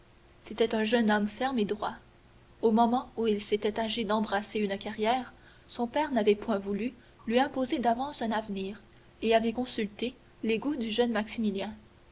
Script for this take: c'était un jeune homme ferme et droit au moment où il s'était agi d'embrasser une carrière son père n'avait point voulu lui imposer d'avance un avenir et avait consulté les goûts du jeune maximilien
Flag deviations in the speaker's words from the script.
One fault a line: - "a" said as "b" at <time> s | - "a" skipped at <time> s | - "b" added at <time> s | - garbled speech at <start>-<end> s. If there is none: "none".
none